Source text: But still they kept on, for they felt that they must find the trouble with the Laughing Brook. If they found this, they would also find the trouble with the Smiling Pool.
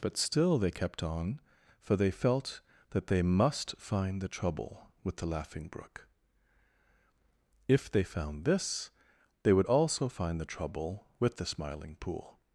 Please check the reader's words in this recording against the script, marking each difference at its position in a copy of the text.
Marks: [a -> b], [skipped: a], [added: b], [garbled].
But still they kept on, for they felt that they must find the trouble with the Laughing Brook. If they found this, they would also find the trouble with the Smiling Pool.